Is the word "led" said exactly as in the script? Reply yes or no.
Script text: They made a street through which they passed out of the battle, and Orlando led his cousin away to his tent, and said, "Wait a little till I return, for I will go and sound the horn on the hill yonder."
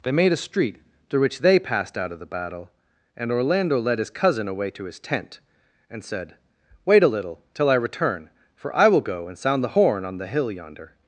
yes